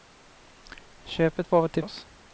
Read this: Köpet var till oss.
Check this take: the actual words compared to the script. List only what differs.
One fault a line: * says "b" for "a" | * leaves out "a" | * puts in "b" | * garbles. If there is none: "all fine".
all fine